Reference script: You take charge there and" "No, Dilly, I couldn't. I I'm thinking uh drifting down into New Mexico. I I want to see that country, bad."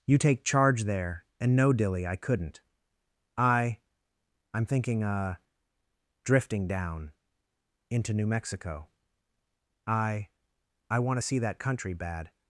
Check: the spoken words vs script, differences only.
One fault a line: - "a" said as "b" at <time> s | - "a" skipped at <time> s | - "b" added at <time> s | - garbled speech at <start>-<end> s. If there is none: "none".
none